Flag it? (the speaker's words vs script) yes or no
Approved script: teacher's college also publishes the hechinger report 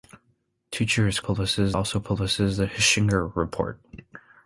yes